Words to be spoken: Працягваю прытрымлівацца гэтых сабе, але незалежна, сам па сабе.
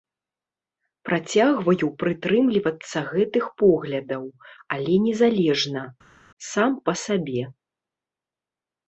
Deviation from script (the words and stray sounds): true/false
true